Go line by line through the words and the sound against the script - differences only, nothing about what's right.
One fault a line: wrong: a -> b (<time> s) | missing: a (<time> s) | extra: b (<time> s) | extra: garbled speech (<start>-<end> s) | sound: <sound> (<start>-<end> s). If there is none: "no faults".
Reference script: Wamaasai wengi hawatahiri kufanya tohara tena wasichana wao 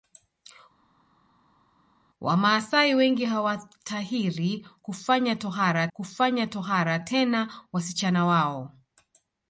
extra: kufanya tohara (5.9 s)